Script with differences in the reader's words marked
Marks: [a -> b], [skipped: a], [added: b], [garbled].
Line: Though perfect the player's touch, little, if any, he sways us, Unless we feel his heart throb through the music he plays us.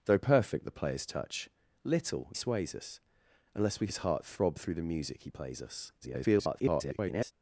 Though perfect the player's touch, little, [skipped: if any, he] sways us, Unless we [skipped: feel] his heart throb through the music he plays us. [garbled]